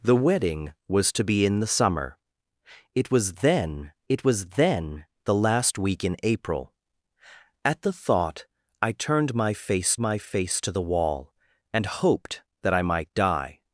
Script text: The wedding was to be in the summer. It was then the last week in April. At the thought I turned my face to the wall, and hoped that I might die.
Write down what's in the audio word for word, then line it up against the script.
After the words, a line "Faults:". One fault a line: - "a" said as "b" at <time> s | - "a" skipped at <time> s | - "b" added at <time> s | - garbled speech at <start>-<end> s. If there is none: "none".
The wedding was to be in the summer. It was then it was then the last week in April. At the thought I turned my face my face to the wall, and hoped that I might die.
Faults:
- "it was then" added at 4.1 s
- "my face" added at 10.0 s